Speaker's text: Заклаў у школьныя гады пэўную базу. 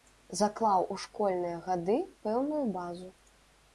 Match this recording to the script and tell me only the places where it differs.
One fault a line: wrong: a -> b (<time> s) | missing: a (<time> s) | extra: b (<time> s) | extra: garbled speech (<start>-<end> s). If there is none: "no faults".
no faults